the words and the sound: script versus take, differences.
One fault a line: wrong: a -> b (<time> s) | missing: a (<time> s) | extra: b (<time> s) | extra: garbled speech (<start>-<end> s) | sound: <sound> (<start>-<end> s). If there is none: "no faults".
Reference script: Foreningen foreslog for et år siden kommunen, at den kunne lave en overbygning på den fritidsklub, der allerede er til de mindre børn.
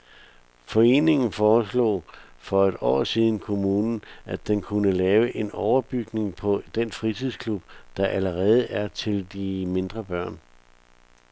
no faults